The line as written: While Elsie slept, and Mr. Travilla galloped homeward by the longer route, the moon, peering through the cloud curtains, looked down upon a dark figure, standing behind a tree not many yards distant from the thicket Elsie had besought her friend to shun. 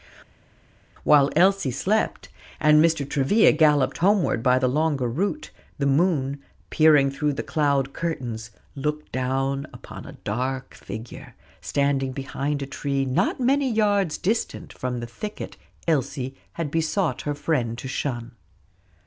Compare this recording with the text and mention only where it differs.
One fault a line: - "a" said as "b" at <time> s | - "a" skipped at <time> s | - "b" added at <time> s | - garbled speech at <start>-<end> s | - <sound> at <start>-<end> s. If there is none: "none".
none